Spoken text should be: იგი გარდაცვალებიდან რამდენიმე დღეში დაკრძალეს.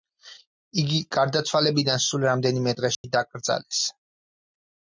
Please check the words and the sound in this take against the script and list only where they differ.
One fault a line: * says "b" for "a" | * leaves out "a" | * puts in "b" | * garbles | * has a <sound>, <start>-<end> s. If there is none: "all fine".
* puts in "სულ"
* has a dropout, 2.9-3.0 s